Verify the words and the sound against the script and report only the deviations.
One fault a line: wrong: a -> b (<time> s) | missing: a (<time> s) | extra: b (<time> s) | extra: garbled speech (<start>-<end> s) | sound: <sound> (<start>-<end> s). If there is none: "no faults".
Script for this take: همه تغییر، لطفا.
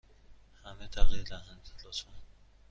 extra: دهند (1.2 s)